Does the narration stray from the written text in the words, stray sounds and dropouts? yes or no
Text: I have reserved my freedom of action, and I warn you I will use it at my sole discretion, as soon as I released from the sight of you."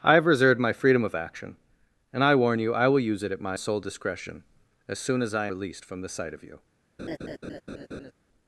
yes